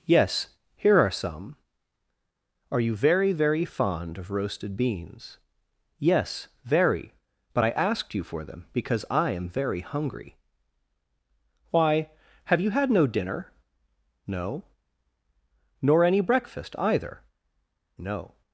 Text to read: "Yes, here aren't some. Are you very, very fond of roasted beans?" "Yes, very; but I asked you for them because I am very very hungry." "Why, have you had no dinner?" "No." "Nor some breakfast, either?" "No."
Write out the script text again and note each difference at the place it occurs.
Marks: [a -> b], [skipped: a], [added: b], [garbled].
"Yes, here [aren't -> are] some. Are you very, very fond of roasted beans?" "Yes, very; but I asked you for them because I am very [skipped: very] hungry." "Why, have you had no dinner?" "No." "Nor [some -> any] breakfast, either?" "No."